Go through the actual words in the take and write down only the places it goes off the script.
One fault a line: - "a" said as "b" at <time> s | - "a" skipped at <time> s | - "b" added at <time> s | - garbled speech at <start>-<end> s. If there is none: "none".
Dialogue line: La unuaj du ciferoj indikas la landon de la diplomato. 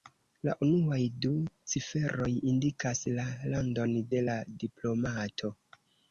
none